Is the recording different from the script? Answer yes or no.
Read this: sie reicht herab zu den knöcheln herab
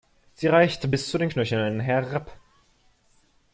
yes